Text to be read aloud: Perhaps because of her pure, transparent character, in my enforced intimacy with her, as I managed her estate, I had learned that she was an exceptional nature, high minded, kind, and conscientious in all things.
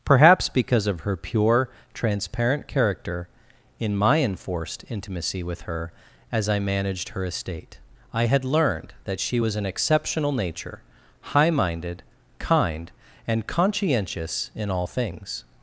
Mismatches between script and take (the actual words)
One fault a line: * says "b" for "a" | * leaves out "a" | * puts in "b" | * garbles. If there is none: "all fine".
all fine